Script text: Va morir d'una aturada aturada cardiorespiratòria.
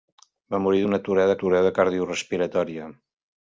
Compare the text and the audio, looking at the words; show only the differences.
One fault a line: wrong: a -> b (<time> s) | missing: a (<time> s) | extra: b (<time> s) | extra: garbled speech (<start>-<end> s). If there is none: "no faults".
no faults